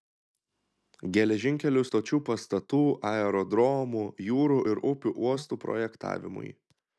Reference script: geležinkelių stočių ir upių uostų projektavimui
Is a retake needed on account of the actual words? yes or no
yes